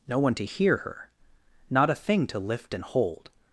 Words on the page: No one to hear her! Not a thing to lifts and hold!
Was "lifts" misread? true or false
true